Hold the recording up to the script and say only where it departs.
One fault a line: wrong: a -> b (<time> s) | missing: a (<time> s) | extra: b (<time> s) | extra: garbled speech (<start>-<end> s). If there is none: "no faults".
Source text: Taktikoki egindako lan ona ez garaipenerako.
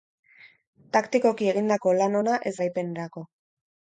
no faults